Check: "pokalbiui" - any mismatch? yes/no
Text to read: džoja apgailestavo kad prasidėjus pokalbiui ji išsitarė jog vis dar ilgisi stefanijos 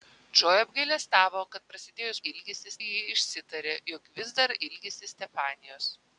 yes